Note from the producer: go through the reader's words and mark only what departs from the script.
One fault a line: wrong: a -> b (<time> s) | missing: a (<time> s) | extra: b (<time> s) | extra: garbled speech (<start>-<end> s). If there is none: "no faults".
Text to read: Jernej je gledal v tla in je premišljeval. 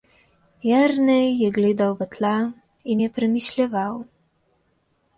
no faults